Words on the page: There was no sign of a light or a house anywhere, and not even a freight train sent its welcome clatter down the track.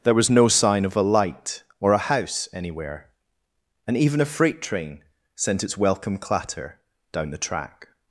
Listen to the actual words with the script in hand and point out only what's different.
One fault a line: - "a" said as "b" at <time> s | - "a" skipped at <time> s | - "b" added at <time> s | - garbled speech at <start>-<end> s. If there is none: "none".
- "not" skipped at 4.0 s